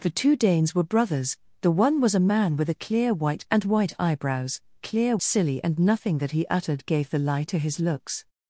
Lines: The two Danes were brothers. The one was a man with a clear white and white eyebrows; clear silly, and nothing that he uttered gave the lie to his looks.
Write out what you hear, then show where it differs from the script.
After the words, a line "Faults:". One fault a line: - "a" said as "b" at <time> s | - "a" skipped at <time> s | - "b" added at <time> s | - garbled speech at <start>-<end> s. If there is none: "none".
The two Danes were brothers. The one was a man with a clear white and white eyebrows; clear silly, and nothing that he uttered gave the lie to his looks.
Faults:
none